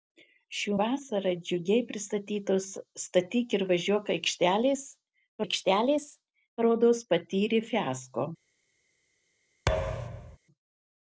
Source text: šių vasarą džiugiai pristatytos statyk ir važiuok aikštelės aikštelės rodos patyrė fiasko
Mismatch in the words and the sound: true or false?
true